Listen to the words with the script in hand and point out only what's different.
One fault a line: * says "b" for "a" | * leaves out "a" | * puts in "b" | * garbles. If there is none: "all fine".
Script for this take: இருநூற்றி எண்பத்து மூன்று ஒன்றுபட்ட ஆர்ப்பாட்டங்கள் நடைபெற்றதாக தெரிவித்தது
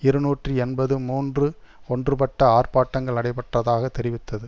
all fine